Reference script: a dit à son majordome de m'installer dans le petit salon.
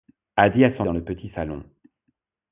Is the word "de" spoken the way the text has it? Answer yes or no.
no